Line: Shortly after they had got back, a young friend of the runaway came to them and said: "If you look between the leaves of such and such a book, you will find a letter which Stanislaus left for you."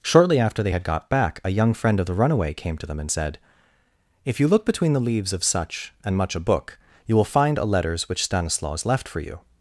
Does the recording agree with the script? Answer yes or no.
no